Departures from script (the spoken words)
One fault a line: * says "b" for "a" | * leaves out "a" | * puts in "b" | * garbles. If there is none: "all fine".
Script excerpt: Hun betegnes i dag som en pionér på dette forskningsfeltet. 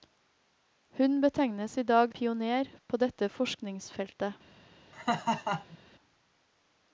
* leaves out "som en"